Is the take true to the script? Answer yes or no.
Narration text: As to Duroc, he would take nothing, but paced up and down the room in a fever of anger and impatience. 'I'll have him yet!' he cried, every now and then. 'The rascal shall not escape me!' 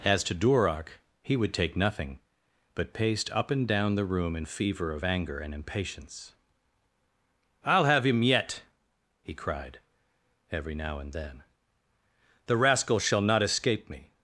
no